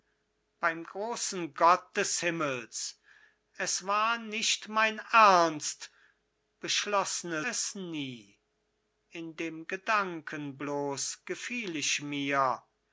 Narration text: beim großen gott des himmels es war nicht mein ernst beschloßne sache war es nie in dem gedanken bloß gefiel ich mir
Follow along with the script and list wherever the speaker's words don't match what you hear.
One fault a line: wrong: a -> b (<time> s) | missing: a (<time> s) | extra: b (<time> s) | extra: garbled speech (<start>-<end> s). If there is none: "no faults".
missing: sache war (7.4 s)